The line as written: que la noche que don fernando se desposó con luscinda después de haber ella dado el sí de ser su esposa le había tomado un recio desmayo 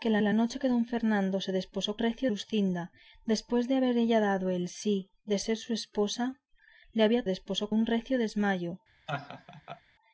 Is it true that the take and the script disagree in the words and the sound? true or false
true